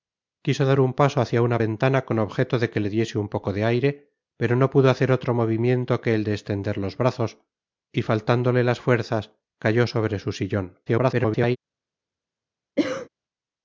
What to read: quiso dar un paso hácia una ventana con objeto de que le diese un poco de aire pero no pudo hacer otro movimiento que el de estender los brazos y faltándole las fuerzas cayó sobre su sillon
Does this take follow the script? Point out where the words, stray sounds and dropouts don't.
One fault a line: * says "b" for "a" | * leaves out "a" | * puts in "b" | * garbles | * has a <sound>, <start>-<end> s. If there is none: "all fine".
* garbles
* has a cough, 12.8-13.1 s